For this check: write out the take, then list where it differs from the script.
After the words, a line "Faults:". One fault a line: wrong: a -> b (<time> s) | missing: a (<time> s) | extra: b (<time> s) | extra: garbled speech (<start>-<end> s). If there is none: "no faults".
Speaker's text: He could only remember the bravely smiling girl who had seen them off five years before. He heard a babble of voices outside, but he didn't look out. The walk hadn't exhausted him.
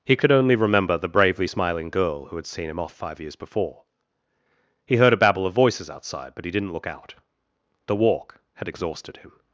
He could only remember the bravely smiling girl who had seen him off five years before. He heard a babble of voices outside, but he didn't look out. The walk had exhausted him.
Faults:
wrong: them -> him (2.7 s)
wrong: hadn't -> had (8.6 s)